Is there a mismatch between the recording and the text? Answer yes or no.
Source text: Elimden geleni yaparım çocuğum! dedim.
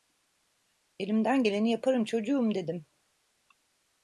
no